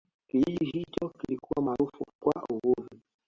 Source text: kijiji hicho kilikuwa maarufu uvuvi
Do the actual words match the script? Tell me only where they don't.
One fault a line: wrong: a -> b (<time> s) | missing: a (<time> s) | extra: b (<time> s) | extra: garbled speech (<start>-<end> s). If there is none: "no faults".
extra: kwa (2.2 s)